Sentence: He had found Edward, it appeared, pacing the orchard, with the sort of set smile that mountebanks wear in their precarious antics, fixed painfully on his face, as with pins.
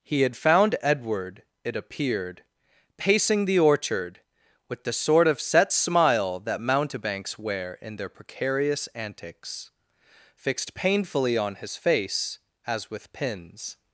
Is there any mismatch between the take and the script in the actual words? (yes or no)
no